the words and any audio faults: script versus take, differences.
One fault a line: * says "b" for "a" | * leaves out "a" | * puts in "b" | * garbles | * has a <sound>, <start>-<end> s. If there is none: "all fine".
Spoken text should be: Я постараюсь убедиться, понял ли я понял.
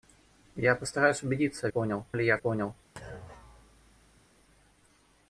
* has a thud, 3.0-4.3 s